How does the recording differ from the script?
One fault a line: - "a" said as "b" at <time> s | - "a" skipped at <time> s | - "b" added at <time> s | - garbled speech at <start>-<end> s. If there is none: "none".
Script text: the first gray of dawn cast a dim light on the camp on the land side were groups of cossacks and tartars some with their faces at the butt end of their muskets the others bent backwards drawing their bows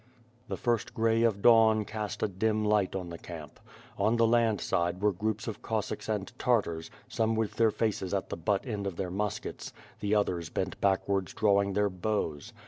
none